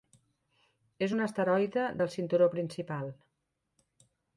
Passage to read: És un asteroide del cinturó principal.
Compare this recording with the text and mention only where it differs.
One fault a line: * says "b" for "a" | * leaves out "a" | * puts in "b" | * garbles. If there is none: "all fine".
all fine